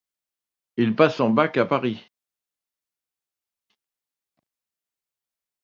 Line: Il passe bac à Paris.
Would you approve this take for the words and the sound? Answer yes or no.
no